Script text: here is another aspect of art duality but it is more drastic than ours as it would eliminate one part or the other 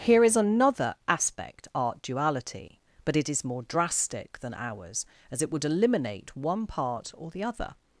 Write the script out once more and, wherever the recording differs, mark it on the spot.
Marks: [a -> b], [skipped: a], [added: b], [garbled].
here is another aspect [skipped: of] art duality but it is more drastic than ours as it would eliminate one part or the other